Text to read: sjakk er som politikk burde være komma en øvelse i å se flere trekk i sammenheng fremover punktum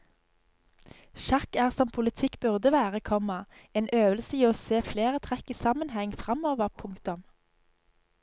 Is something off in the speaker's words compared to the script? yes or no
no